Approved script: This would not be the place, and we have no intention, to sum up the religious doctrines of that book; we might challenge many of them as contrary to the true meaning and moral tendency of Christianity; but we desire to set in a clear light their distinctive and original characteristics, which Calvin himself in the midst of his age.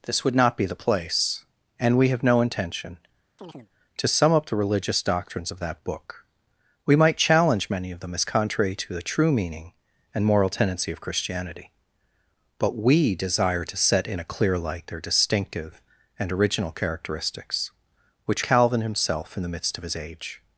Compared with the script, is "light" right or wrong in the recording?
right